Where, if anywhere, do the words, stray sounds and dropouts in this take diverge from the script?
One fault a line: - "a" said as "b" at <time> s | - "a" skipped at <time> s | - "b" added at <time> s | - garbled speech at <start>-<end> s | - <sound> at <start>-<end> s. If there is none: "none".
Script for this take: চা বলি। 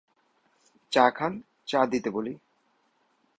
- "খান চা দিতে" added at 1.1 s